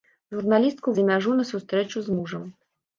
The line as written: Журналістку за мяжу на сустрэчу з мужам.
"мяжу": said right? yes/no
yes